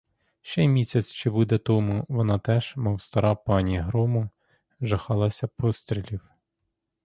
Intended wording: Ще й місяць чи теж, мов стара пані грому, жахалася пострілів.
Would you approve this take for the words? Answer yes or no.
no